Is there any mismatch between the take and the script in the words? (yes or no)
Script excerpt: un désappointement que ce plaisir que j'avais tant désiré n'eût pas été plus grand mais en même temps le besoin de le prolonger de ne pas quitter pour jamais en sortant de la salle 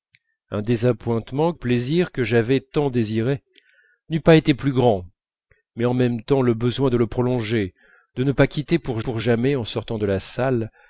yes